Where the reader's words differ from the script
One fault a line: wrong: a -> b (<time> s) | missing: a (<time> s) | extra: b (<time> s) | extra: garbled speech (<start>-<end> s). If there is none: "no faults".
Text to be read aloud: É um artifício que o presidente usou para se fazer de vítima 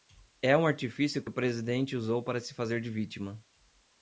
no faults